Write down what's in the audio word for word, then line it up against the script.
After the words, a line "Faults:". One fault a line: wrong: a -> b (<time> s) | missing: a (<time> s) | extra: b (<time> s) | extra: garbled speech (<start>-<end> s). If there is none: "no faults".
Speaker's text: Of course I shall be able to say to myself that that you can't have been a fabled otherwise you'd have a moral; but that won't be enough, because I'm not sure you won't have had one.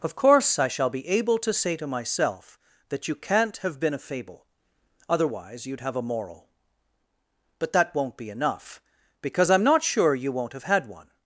Of course I shall be able to say to myself that you can't have been a fable otherwise you'd have a moral; but that won't be enough, because I'm not sure you won't have had one.
Faults:
missing: that (3.1 s)
wrong: fabled -> fable (4.0 s)